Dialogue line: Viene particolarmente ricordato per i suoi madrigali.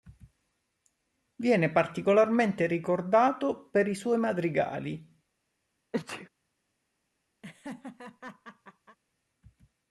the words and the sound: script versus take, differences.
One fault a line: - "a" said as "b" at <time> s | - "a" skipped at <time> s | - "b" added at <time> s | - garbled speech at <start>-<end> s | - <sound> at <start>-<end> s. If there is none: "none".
- sneeze at 5.9-6.3 s
- laugh at 7.4-9.0 s